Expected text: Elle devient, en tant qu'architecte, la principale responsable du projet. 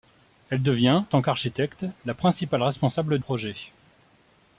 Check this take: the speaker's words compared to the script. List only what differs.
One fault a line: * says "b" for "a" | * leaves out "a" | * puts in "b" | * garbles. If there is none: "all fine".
* leaves out "en"
* leaves out "du"